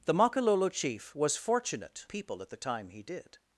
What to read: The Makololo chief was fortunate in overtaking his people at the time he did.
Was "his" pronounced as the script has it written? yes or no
no